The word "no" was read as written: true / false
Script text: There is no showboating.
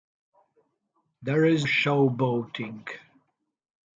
false